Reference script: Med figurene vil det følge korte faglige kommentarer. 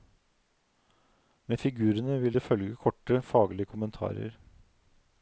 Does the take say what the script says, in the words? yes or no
yes